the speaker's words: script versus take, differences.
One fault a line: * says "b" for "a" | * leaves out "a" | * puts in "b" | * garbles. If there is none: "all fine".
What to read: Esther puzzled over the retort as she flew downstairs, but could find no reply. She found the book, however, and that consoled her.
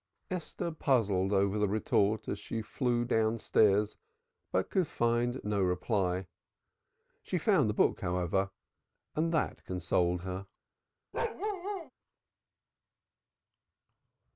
all fine